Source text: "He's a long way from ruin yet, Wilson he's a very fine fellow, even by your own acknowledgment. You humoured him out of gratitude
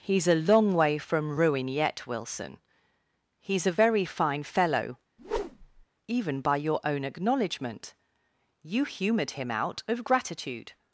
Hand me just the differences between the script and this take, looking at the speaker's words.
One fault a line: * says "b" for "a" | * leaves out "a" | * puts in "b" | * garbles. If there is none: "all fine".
all fine